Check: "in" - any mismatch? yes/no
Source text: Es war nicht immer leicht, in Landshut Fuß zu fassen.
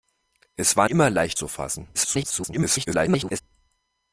yes